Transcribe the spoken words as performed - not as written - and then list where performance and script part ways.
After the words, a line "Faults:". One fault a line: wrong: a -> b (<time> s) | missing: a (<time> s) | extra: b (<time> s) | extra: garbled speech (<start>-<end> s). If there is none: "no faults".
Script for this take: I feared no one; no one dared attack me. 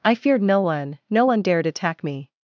I feared no one; no one dared attack me.
Faults:
no faults